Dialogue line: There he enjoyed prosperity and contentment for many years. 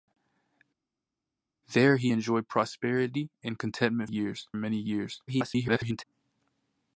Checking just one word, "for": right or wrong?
wrong